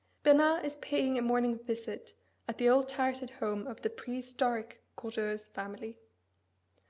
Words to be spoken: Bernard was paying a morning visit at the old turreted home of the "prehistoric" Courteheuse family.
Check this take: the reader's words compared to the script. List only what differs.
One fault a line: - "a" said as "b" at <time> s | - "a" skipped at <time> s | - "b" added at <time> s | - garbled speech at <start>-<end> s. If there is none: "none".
- "was" said as "is" at 0.7 s